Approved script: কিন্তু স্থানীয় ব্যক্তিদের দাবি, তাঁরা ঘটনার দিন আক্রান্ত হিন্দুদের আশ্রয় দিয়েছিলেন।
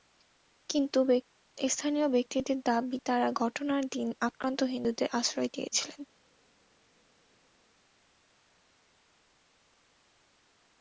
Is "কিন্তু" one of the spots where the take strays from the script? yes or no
no